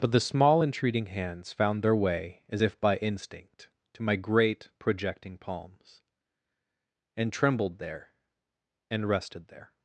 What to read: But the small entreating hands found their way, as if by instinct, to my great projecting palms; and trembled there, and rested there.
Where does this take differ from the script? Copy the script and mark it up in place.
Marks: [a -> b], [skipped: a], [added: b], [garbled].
But the small entreating hands found their way, as if by instinct, to my great projecting palms; and trembled there, and rested there.